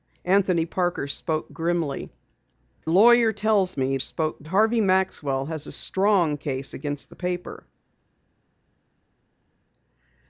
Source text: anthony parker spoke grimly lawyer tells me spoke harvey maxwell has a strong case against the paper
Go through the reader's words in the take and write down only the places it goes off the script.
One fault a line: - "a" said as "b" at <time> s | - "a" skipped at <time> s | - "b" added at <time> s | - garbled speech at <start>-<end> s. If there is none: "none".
none